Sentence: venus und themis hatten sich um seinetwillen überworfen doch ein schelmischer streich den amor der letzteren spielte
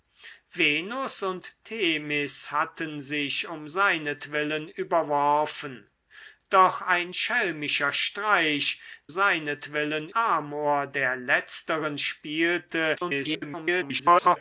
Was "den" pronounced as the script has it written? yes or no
no